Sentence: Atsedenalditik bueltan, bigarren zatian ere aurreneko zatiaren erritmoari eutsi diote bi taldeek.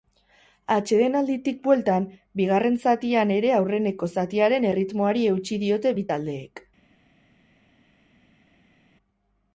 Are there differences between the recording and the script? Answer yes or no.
no